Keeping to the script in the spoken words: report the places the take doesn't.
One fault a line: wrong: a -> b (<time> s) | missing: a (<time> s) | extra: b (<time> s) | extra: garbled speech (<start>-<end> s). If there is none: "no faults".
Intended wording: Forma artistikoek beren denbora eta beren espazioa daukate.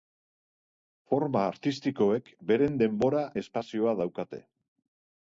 missing: eta beren (3.2 s)